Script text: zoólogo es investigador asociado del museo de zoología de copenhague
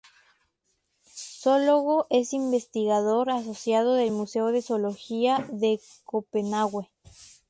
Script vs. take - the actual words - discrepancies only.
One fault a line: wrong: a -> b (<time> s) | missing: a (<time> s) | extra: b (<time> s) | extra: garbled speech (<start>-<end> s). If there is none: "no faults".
no faults